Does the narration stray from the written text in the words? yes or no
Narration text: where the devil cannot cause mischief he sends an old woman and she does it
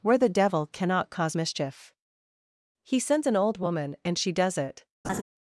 no